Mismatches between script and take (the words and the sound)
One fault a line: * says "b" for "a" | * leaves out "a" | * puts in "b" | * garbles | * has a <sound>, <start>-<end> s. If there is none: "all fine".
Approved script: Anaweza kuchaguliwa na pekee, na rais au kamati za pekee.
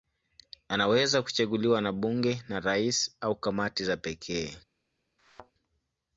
* says "bunge" for "pekee"
* has a thud, 5.2-5.5 s